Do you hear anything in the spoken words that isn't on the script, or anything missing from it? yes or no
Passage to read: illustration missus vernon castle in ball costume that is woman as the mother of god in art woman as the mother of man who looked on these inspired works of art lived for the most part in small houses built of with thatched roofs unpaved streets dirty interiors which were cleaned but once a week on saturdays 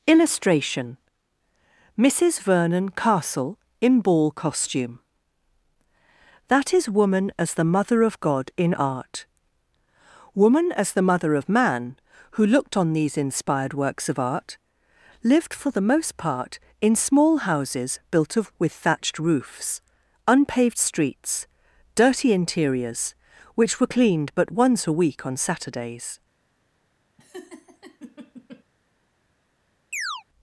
no